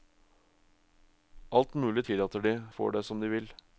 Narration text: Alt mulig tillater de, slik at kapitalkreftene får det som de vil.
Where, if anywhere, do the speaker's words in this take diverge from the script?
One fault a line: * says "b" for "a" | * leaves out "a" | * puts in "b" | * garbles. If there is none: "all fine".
* leaves out "slik at kapitalkreftene"